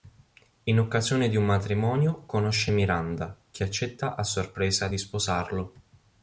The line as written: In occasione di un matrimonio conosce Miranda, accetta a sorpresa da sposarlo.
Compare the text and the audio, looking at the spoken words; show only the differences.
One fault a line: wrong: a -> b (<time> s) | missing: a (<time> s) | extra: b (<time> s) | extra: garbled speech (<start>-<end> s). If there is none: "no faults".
extra: che (3.5 s)
wrong: da -> di (4.9 s)